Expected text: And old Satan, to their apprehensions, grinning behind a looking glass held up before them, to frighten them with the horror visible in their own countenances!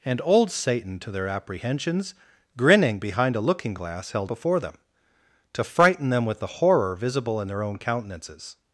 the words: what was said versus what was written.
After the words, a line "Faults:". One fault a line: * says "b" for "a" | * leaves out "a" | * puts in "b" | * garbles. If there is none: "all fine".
And old Satan, to their apprehensions, grinning behind a looking glass held before them, to frighten them with the horror visible in their own countenances!
Faults:
* leaves out "up"